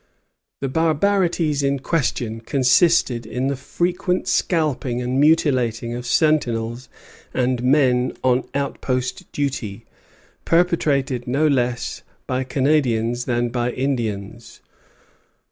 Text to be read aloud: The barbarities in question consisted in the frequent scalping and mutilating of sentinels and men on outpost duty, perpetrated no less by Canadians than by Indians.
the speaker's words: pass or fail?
pass